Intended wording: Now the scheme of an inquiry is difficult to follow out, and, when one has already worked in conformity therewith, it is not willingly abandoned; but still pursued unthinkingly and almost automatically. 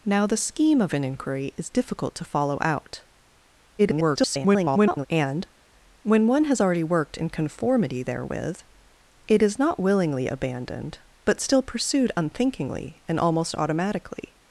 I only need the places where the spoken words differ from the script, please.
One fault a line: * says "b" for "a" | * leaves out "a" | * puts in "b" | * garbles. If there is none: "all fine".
* garbles